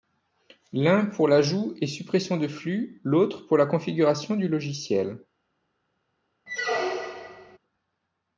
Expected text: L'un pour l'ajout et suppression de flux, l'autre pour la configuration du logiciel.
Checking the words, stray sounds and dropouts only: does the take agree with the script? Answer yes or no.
no